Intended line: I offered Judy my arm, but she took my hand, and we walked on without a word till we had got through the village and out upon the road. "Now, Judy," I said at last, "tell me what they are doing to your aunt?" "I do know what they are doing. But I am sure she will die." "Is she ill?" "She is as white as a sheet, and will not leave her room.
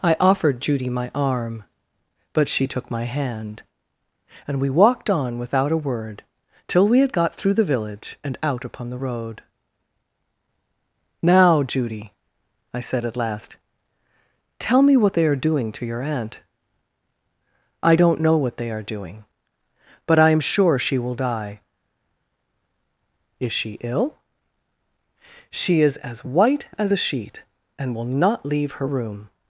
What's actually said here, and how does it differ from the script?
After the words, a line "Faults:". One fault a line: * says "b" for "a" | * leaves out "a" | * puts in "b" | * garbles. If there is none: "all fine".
I offered Judy my arm, but she took my hand, and we walked on without a word till we had got through the village and out upon the road. "Now, Judy," I said at last, "tell me what they are doing to your aunt?" "I don't know what they are doing. But I am sure she will die." "Is she ill?" "She is as white as a sheet, and will not leave her room.
Faults:
* says "don't" for "do"